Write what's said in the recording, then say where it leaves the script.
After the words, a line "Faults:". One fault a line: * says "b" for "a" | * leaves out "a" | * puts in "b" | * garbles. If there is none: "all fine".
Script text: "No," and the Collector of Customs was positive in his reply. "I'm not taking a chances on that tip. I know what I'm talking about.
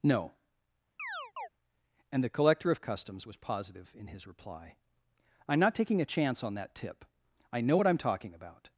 "No," and the Collector of Customs was positive in his reply. "I'm not taking a chance on that tip. I know what I'm talking about.
Faults:
* says "chance" for "chances"